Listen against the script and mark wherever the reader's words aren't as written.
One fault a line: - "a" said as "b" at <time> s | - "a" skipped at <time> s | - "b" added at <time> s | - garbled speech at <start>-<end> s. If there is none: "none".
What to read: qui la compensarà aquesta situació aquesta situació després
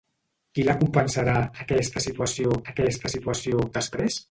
none